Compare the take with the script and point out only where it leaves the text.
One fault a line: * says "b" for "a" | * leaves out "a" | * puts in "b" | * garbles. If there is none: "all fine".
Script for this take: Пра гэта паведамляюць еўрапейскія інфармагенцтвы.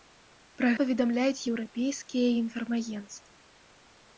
* leaves out "гэта"